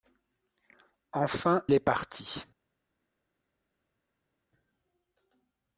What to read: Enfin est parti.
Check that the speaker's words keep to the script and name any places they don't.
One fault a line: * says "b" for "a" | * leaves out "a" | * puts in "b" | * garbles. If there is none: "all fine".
all fine